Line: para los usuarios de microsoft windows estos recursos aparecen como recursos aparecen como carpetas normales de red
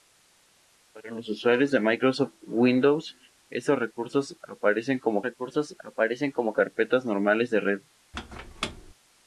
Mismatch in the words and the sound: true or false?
true